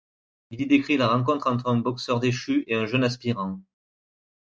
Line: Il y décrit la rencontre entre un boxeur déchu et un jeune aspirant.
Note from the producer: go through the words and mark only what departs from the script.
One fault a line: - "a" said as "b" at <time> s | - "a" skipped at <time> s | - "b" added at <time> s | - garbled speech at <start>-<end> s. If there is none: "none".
none